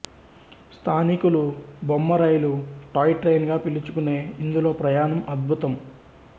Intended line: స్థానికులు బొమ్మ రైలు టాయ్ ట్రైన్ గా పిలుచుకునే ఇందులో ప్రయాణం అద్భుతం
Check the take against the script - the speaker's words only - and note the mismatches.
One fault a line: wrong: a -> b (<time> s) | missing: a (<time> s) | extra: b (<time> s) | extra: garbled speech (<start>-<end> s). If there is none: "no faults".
no faults